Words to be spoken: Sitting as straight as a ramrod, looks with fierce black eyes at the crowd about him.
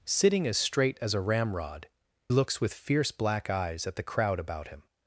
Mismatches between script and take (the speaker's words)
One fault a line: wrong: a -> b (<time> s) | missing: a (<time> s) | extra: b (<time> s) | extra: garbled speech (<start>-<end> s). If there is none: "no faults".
no faults